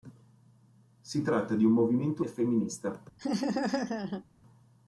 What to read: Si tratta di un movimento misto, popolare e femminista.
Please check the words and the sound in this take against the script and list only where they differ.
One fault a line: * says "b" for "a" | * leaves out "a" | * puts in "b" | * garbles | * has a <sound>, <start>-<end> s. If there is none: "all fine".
* leaves out "misto popolare"
* has a laugh, 3.2-4.2 s